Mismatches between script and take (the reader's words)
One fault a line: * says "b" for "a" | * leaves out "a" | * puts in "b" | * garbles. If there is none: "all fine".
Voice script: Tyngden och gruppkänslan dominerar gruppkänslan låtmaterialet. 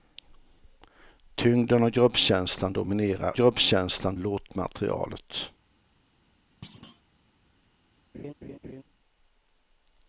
all fine